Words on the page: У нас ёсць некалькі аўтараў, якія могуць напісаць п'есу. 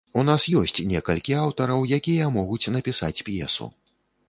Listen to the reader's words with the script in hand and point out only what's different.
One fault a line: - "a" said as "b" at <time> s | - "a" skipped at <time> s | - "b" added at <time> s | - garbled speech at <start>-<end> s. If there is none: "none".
none